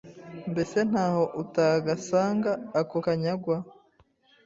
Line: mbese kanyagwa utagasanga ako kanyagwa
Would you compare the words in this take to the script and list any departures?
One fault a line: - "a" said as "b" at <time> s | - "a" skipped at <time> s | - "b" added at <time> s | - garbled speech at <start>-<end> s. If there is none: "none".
- "kanyagwa" said as "ntaho" at 0.9 s